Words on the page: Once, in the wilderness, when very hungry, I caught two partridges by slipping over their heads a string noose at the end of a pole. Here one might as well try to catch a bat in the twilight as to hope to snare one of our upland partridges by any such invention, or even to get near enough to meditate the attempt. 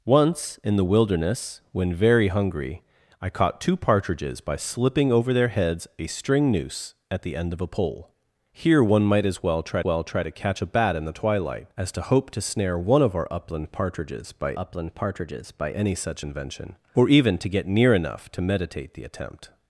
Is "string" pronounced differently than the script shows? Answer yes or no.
no